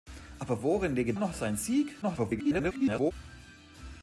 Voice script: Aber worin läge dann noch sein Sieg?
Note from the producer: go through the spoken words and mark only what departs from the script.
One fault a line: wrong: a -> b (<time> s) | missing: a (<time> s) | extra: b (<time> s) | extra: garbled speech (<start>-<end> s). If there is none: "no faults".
missing: dann (1.1 s)
extra: garbled speech (2.0-3.1 s)